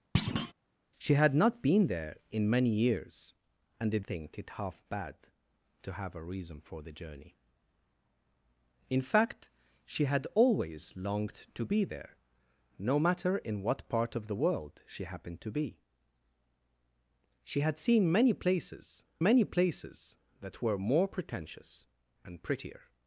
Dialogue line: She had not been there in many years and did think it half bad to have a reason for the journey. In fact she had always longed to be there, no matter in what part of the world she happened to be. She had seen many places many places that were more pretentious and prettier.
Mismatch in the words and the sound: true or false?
true